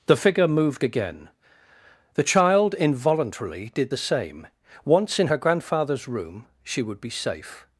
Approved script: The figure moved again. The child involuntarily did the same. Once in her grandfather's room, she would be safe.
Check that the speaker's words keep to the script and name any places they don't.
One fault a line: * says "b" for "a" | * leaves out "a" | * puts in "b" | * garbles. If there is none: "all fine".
all fine